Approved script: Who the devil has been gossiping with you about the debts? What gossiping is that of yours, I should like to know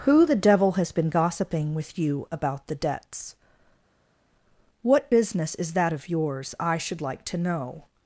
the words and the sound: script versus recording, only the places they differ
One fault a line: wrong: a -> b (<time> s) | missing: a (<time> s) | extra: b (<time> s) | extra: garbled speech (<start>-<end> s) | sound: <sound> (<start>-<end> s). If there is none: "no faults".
wrong: gossiping -> business (5.1 s)